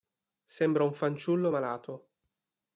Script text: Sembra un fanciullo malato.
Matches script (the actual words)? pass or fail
pass